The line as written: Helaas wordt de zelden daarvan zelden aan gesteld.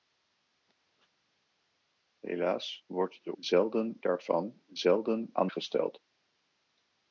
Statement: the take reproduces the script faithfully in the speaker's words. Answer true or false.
true